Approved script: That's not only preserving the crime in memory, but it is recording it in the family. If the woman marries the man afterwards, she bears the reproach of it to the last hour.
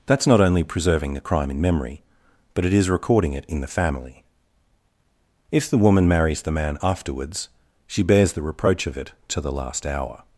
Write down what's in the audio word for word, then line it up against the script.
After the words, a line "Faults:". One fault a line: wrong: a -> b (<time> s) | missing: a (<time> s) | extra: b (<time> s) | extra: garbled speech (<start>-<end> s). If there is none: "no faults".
That's not only preserving the crime in memory, but it is recording it in the family. If the woman marries the man afterwards, she bears the reproach of it to the last hour.
Faults:
no faults